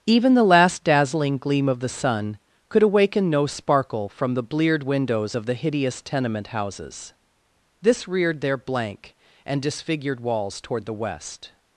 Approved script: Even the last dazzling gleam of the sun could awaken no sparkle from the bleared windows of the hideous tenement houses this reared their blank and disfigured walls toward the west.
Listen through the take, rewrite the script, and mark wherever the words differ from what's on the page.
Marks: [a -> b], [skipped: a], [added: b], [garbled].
Even the last dazzling gleam of the sun could awaken no sparkle from the bleared windows of the hideous tenement houses this reared their blank and disfigured walls toward the west.